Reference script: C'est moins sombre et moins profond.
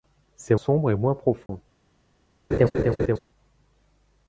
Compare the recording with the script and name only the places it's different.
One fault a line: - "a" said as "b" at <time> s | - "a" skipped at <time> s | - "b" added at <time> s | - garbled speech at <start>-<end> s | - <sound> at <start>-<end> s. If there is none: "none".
- "moins" skipped at 0.6 s
- dropout at 1.5-1.5 s
- laugh at 2.5-3.2 s